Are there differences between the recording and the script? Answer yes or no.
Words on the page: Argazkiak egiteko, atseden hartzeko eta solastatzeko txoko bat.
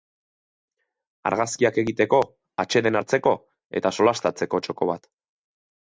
no